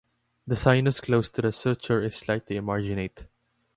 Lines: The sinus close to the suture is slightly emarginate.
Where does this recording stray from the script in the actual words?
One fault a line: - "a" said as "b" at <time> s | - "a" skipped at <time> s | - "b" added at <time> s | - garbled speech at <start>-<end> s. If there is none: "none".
none